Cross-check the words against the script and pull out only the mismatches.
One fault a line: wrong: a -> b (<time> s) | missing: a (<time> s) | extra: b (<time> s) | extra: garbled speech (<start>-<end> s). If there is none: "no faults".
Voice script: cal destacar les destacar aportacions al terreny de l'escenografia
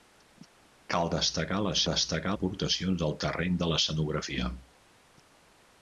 no faults